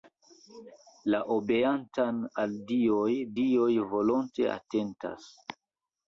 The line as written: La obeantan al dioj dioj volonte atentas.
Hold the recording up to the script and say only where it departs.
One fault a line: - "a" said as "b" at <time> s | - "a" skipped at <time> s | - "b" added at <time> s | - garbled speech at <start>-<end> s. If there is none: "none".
none